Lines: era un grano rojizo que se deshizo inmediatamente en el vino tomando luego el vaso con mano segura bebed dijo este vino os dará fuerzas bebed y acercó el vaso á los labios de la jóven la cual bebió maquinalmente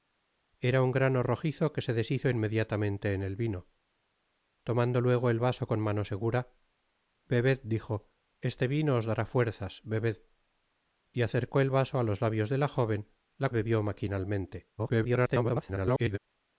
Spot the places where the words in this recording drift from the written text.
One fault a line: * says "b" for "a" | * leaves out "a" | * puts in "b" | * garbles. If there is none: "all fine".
* leaves out "cual"
* garbles